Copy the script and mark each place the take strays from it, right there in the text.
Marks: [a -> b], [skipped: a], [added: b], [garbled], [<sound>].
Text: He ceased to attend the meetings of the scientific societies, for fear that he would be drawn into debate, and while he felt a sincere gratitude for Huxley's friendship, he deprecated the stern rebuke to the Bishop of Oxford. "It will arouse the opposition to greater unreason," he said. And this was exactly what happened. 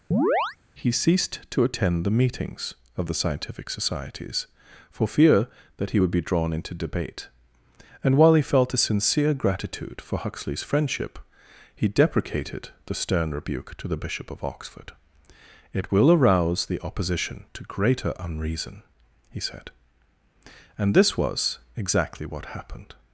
[chirp] He ceased to attend the meetings of the scientific societies, for fear that he would be drawn into debate, and while he felt a sincere gratitude for Huxley's friendship, he deprecated the stern rebuke to the Bishop of Oxford. "It will arouse the opposition to greater unreason," he said. And this was exactly what happened.